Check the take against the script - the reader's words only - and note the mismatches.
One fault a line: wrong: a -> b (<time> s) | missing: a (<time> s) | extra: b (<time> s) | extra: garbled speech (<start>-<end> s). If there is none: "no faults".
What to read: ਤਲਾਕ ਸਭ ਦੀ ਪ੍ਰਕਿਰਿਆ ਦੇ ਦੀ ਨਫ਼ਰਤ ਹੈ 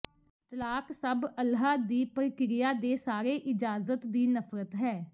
extra: ਅੱਲ੍ਹਾ (1.4 s)
extra: ਸਾਰੇ ਇਜਾਜ਼ਤ (3.0 s)